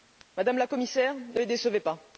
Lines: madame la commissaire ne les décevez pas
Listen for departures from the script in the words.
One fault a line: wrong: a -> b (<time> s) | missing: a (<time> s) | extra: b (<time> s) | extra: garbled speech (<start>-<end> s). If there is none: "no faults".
no faults